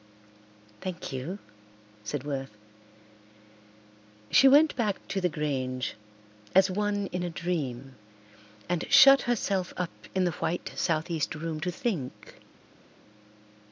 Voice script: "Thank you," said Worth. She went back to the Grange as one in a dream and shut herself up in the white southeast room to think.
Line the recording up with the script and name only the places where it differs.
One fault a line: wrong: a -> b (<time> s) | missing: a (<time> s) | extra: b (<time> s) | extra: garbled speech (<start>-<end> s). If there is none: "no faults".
no faults